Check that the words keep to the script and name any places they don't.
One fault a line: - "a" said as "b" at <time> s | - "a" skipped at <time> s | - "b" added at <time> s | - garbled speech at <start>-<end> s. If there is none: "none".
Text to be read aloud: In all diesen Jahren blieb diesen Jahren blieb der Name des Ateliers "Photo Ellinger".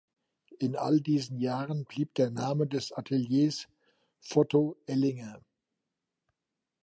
- "diesen Jahren blieb" skipped at 2.1 s